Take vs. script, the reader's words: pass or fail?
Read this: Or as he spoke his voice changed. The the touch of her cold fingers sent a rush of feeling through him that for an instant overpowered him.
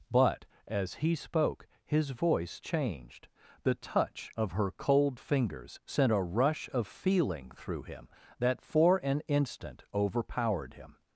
fail